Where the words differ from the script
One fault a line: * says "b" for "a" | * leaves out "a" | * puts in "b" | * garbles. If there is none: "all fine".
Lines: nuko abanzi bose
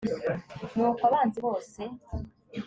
all fine